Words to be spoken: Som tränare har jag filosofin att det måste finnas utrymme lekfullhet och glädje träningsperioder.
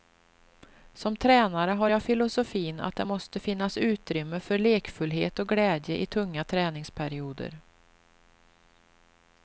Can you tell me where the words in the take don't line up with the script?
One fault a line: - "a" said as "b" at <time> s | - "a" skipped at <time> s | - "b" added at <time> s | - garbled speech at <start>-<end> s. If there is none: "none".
- "för" added at 4.4 s
- "i tunga" added at 6.0 s